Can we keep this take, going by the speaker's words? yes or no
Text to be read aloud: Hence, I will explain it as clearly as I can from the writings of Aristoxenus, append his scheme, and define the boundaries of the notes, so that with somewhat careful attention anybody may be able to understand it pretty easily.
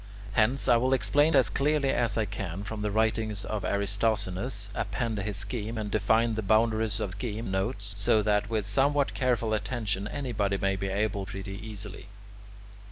no